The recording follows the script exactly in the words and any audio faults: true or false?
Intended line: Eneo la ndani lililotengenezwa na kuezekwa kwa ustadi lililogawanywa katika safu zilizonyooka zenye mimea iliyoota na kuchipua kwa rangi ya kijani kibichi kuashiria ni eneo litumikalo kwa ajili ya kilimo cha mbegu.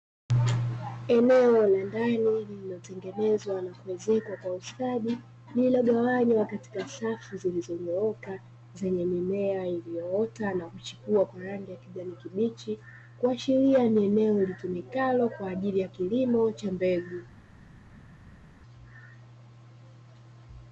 true